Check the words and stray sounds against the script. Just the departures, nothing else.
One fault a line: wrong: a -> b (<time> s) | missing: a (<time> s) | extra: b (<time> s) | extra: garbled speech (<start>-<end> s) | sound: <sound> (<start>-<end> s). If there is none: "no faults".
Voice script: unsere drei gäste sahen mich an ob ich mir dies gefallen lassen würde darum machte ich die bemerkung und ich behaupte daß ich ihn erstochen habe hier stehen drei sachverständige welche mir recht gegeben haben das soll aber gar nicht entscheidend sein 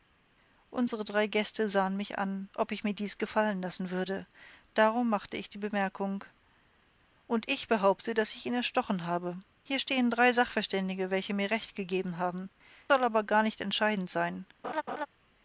missing: das (12.5 s)
sound: laugh (14.6-15.1 s)